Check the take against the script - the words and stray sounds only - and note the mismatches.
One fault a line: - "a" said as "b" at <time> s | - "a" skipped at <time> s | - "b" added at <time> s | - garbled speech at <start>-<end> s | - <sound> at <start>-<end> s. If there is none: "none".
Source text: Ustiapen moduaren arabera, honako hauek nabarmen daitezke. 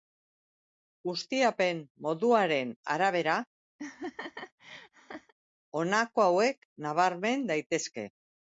- laugh at 3.8-5.3 s